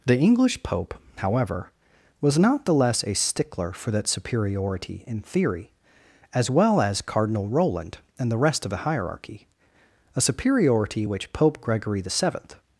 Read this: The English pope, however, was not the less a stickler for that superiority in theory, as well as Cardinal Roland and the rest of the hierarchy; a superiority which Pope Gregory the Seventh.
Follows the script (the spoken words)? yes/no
yes